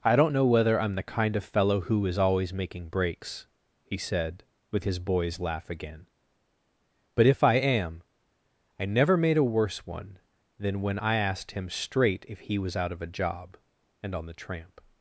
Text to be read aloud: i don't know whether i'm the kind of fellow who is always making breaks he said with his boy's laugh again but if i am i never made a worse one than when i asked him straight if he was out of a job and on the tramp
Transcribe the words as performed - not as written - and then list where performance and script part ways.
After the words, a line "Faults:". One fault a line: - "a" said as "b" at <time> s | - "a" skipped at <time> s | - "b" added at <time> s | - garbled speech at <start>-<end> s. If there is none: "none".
i don't know whether i'm the kind of fellow who is always making breaks he said with his boy's laugh again but if i am i never made a worse one than when i asked him straight if he was out of a job and on the tramp
Faults:
none